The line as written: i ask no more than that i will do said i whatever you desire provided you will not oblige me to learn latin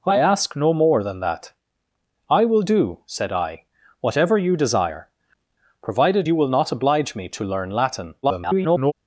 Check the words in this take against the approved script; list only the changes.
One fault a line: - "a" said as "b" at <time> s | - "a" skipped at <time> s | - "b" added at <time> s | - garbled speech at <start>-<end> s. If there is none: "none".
- garbled speech at 8.2-8.9 s